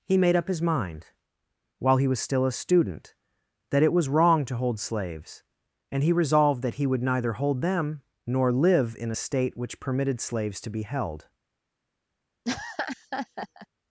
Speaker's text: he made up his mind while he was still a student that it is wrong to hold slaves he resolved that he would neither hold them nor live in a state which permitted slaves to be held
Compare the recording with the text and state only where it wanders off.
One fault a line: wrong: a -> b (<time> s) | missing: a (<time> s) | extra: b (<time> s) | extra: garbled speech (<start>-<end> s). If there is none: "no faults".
wrong: is -> was (3.9 s)
extra: and (5.9 s)